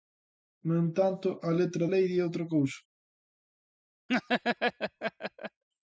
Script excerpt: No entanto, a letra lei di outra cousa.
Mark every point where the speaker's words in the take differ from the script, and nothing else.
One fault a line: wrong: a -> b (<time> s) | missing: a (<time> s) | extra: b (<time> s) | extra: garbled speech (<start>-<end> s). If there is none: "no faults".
no faults